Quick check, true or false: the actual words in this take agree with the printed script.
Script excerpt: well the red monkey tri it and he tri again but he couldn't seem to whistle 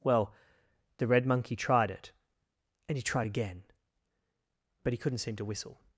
false